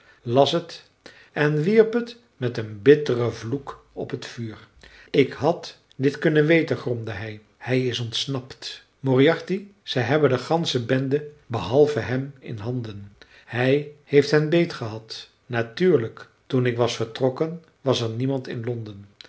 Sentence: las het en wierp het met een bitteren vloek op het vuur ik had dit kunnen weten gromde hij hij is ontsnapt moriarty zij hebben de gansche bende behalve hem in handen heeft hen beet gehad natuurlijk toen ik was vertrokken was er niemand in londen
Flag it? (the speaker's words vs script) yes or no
yes